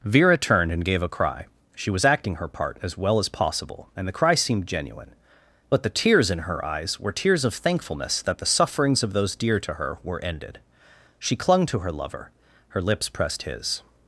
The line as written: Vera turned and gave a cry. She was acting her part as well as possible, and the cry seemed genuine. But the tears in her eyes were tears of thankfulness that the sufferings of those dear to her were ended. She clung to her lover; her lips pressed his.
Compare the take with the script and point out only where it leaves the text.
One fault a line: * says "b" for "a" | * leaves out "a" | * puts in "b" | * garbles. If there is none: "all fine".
all fine